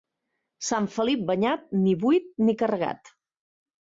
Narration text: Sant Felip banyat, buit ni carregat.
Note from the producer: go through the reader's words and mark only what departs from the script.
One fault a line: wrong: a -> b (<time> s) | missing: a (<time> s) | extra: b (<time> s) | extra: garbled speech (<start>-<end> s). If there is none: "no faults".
extra: ni (1.8 s)